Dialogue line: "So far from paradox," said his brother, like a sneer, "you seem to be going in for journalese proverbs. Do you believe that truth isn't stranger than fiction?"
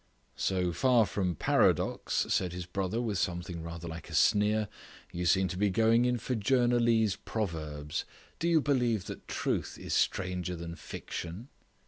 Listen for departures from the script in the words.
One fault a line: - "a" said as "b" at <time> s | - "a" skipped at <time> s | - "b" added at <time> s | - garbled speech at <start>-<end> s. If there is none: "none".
- "with something rather" added at 3.0 s
- "isn't" said as "is" at 9.8 s